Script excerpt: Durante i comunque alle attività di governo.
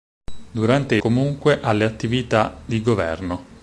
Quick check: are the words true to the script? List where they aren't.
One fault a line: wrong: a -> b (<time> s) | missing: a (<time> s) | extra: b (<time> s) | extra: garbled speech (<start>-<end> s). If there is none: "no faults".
no faults